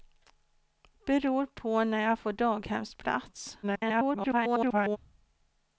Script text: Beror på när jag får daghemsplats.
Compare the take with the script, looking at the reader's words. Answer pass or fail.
fail